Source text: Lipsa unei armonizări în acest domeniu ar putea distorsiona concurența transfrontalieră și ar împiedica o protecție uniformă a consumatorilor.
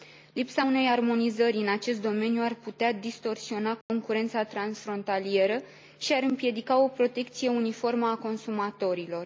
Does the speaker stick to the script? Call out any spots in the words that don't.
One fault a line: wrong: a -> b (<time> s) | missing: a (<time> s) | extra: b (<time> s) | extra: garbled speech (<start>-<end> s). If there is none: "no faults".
no faults